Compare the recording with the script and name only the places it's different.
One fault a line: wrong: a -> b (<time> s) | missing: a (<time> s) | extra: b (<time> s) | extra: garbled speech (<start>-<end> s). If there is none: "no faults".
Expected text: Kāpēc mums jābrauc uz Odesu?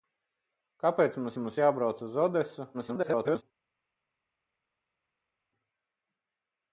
extra: mums (1.4 s)
extra: garbled speech (2.7-3.4 s)